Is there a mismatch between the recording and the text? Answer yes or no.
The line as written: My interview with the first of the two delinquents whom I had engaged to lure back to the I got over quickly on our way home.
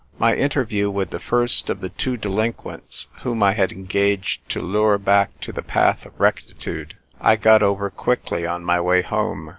yes